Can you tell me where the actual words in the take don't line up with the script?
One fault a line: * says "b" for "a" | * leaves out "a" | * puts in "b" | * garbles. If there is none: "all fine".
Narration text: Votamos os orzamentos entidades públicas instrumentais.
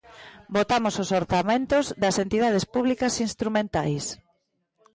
* puts in "das"